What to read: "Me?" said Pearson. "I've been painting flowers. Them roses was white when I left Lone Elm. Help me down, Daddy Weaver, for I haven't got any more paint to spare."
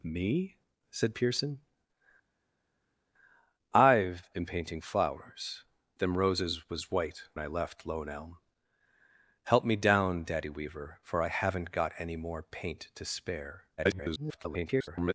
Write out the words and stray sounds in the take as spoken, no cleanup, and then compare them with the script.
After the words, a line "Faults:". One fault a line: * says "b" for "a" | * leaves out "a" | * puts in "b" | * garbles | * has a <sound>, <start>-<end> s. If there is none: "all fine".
"Me?" said Pearson. "I've been painting flowers. Them roses was white I left Lone Elm. Help me down, Daddy Weaver, for I haven't got any more paint to spare." [garbled]
Faults:
* leaves out "when"
* garbles